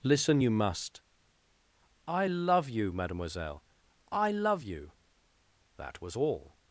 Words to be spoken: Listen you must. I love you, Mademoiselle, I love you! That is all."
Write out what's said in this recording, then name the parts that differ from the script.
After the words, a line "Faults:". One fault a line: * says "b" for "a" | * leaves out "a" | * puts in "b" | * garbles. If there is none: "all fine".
Listen you must. I love you, Mademoiselle, I love you! That was all."
Faults:
* says "was" for "is"